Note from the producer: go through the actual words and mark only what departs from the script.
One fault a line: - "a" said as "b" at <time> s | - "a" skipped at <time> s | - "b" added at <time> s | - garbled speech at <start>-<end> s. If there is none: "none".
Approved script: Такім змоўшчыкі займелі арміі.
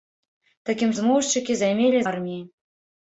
none